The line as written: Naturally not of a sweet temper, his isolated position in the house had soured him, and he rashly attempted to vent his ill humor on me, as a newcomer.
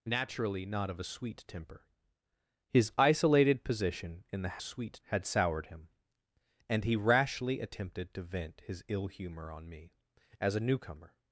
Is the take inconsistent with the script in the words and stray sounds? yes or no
yes